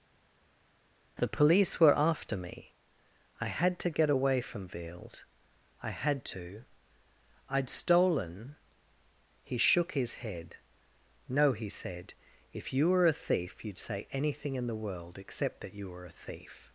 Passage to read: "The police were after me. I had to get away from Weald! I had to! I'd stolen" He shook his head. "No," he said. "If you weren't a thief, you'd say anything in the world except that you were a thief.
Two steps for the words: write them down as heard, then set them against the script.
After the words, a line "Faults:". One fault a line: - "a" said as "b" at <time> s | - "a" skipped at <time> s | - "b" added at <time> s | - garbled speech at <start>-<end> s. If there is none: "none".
"The police were after me. I had to get away from Weald! I had to! I'd stolen" He shook his head. "No," he said. "If you were a thief, you'd say anything in the world except that you were a thief.
Faults:
- "weren't" said as "were" at 12.9 s